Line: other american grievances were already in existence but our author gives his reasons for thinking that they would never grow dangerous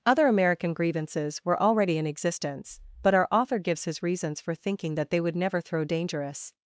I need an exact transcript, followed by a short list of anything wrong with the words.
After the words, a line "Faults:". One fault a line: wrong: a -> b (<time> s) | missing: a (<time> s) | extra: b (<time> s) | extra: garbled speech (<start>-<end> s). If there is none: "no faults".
other american grievances were already in existence but our author gives his reasons for thinking that they would never throw dangerous
Faults:
wrong: grow -> throw (5.6 s)